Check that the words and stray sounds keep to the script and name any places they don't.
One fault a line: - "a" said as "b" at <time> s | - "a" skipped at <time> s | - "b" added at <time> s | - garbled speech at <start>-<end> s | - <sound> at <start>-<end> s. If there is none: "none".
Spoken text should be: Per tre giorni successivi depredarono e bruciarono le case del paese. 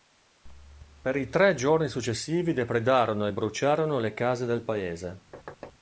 - "i" added at 1.1 s
- thud at 5.3-5.7 s